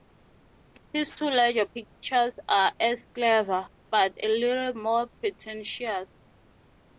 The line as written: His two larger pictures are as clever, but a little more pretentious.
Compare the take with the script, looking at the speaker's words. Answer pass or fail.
pass